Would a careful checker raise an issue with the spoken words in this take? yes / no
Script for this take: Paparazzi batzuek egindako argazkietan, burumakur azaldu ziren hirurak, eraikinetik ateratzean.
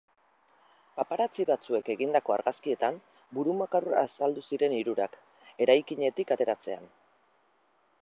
no